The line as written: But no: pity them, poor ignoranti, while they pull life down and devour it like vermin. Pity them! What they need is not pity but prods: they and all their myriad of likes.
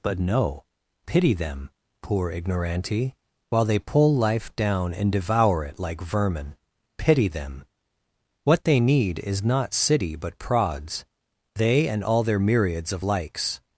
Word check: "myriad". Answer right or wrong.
wrong